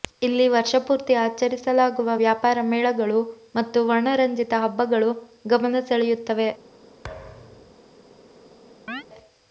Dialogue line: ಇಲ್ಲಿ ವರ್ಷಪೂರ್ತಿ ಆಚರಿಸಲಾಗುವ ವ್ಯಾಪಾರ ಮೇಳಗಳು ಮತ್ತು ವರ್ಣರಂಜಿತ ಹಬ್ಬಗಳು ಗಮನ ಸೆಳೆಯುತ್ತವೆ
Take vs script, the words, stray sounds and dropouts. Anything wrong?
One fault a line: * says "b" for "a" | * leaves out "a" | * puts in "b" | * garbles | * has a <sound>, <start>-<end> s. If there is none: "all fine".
* has a thud, 7.0-7.8 s
* has a chirp, 8.9-9.0 s